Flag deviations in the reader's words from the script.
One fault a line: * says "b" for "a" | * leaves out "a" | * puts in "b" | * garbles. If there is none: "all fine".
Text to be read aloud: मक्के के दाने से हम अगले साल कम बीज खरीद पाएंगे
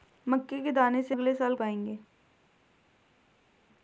* leaves out "हम"
* leaves out "कम बीज खरीद"